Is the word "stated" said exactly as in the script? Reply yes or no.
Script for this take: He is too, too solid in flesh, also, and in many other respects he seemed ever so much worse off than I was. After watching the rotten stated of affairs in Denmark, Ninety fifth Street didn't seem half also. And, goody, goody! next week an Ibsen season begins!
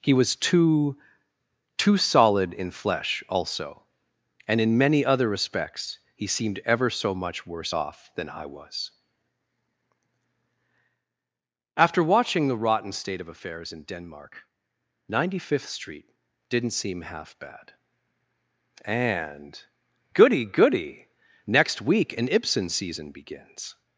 no